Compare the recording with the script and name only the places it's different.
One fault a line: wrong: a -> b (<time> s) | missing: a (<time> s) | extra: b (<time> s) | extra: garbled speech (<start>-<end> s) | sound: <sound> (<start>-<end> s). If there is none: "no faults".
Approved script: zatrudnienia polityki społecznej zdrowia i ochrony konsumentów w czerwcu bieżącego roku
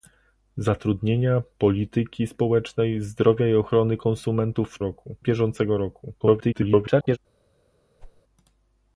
wrong: czerwcu -> roku (4.8 s)
extra: garbled speech (6.2-7.2 s)
sound: whoosh (8.0-8.2 s)